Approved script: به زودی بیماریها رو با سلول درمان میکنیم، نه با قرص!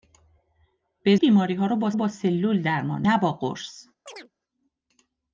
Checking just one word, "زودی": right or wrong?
wrong